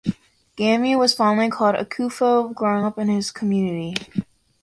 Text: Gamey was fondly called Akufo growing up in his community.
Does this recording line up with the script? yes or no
yes